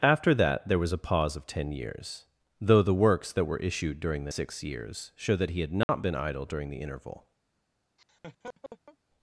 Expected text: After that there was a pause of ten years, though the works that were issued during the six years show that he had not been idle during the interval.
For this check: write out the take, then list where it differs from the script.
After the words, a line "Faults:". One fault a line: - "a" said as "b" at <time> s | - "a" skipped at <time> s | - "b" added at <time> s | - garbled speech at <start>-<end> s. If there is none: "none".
After that there was a pause of ten years, though the works that were issued during the six years show that he had not been idle during the interval.
Faults:
none